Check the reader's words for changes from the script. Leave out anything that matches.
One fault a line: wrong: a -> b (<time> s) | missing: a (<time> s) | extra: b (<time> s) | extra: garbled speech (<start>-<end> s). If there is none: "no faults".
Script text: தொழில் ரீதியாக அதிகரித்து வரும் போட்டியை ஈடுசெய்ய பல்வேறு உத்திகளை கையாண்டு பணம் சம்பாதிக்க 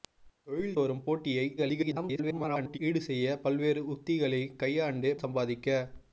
missing: ரீதியாக அதிகரித்து (0.8 s)
extra: garbled speech (1.6-2.8 s)
missing: பணம் (5.1 s)